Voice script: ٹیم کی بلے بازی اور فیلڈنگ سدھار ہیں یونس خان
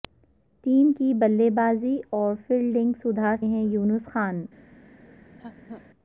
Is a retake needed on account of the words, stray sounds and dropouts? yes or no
yes